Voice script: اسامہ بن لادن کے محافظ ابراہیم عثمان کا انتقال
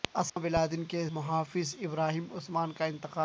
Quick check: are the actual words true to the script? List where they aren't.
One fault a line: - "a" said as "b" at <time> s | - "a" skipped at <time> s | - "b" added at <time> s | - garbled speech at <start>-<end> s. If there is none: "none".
none